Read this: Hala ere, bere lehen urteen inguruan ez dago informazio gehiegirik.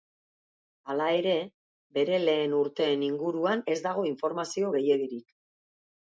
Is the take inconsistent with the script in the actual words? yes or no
no